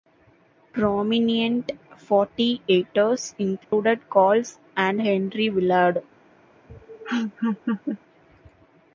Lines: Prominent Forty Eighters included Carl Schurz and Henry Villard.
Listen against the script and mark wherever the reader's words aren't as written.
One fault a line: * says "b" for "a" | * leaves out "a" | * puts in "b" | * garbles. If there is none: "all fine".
* leaves out "Schurz"